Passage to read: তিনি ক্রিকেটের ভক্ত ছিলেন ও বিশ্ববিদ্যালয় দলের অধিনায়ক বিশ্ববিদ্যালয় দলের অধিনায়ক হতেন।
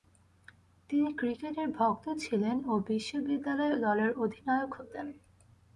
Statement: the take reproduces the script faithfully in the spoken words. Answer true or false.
false